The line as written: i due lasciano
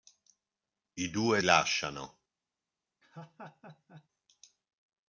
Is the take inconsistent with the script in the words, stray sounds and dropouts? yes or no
yes